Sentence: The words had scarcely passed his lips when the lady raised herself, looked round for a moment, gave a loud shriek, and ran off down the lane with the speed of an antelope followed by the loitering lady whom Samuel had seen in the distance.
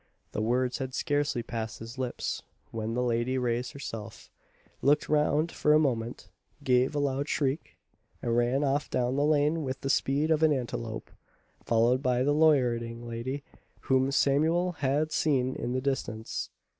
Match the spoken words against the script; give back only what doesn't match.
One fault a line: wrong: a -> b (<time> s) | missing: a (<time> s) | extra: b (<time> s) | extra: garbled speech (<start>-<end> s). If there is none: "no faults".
no faults